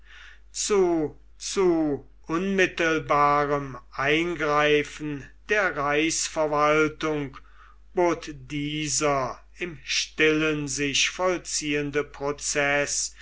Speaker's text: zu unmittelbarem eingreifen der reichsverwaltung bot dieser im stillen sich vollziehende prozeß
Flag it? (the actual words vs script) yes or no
yes